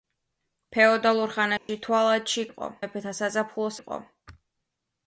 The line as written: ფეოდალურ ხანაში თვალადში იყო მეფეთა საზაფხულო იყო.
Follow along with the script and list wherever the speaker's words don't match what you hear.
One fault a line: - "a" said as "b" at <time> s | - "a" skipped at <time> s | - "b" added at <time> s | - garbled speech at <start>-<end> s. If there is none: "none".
none